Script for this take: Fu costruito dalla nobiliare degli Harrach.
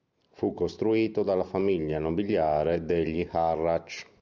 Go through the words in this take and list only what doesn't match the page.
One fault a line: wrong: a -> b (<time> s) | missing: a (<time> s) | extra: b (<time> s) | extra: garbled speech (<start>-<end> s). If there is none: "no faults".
extra: famiglia (1.4 s)